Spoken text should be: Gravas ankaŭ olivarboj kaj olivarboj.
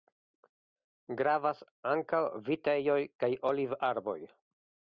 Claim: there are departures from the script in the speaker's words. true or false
true